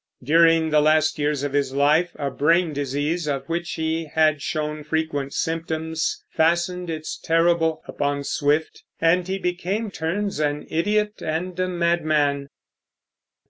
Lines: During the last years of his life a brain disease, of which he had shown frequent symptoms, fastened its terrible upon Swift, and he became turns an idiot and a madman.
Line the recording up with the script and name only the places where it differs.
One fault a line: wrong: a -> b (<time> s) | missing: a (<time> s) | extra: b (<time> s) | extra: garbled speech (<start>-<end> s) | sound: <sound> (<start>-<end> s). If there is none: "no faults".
no faults